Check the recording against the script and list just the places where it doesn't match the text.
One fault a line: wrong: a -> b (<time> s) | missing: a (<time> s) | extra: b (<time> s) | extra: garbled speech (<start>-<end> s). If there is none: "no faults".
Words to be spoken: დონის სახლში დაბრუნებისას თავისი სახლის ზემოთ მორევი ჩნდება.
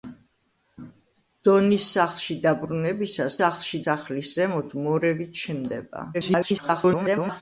wrong: თავისი -> სახლში (3.4 s)
extra: garbled speech (6.1-7.4 s)